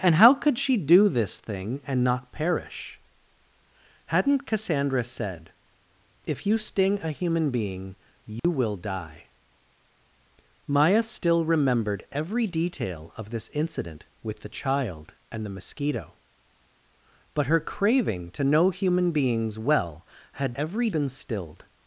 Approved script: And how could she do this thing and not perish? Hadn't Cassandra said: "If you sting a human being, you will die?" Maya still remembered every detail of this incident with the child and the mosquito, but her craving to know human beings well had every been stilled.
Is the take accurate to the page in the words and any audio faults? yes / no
no